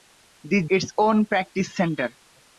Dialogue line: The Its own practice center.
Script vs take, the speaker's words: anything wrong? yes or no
no